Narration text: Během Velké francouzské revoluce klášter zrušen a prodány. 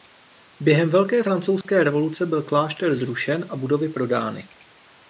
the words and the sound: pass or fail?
fail